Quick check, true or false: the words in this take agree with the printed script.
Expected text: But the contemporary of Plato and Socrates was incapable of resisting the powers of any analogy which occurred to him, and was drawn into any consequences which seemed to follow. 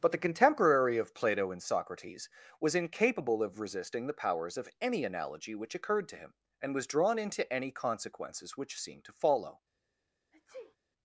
true